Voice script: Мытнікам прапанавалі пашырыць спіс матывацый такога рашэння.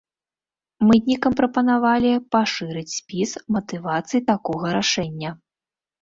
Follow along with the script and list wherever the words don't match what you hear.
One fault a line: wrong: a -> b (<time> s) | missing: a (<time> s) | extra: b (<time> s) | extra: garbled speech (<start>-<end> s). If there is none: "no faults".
no faults